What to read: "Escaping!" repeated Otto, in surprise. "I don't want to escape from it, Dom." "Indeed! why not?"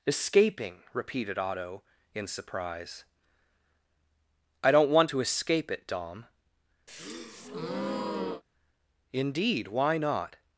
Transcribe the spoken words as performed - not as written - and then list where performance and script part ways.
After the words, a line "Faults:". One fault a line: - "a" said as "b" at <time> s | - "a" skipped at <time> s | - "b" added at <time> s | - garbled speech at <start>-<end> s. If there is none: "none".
"Escaping!" repeated Otto, in surprise. "I don't want to escape it, Dom." "Indeed! why not?"
Faults:
- "from" skipped at 5.7 s